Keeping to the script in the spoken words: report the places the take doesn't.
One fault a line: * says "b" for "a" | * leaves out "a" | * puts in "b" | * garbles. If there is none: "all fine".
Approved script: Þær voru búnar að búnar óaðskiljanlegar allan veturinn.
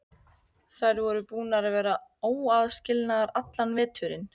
* says "vera" for "búnar"